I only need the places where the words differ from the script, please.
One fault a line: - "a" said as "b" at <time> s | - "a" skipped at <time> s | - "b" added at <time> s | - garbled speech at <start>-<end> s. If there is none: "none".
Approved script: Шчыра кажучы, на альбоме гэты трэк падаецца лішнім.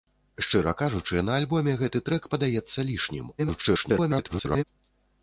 - garbled speech at 3.4-4.6 s